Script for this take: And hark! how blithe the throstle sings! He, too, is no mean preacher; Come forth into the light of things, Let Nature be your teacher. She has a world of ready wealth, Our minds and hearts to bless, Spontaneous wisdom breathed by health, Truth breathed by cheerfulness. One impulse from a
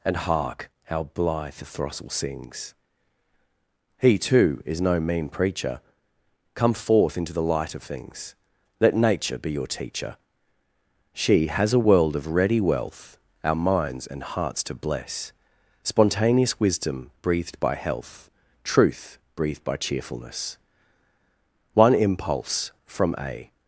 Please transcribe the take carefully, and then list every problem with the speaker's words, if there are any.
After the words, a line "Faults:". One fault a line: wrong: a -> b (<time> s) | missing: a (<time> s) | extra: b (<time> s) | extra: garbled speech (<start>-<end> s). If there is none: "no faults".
And hark! how blithe the throstle sings! He, too, is no mean preacher; Come forth into the light of things, Let Nature be your teacher. She has a world of ready wealth, Our minds and hearts to bless, Spontaneous wisdom breathed by health, Truth breathed by cheerfulness. One impulse from a
Faults:
no faults